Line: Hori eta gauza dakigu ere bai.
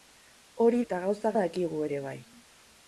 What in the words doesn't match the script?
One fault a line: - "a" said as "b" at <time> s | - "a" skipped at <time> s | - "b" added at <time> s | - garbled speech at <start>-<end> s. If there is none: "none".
none